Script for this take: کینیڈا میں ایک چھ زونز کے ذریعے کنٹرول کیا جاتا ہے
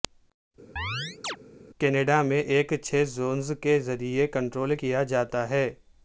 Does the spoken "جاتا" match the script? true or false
true